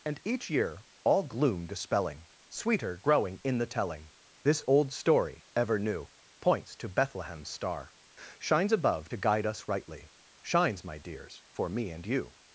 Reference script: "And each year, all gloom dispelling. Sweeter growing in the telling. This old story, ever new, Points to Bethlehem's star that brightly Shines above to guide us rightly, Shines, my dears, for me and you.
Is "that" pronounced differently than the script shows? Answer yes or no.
yes